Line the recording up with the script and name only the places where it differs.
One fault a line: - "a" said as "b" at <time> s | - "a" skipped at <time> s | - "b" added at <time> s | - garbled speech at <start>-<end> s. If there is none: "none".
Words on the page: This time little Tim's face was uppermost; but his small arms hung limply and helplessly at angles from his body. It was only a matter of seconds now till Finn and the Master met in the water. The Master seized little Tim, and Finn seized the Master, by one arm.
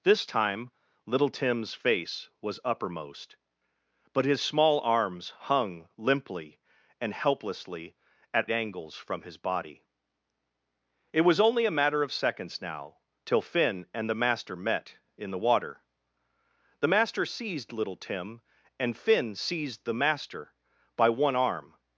none